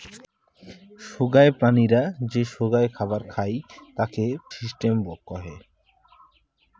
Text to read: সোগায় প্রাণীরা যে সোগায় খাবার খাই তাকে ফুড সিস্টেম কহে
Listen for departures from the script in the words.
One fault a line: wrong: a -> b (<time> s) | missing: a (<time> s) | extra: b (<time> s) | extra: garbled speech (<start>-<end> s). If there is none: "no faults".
missing: ফুড (4.2 s)